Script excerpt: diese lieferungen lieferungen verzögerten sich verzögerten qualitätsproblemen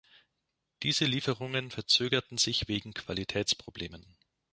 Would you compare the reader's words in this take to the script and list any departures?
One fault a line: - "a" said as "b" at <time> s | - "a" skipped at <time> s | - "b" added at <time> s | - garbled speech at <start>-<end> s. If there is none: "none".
- "lieferungen" skipped at 1.7 s
- "verzögerten" said as "wegen" at 2.7 s